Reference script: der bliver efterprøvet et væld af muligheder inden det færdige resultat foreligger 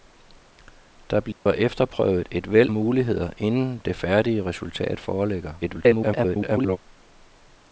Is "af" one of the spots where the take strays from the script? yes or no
yes